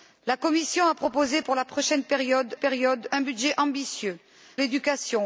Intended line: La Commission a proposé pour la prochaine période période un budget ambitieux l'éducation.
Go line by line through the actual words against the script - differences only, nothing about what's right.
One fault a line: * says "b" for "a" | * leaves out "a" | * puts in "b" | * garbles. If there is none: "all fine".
all fine